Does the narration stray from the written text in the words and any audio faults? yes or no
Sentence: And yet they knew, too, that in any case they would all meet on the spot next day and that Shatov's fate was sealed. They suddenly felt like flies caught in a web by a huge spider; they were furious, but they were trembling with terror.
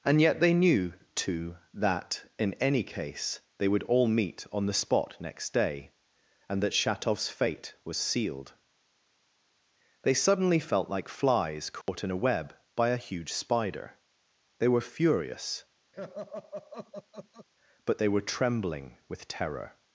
yes